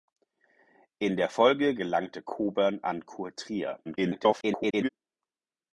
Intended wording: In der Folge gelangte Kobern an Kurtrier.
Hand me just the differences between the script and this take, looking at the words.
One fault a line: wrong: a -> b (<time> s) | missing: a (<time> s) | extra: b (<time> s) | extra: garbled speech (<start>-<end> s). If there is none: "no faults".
extra: garbled speech (3.8-4.9 s)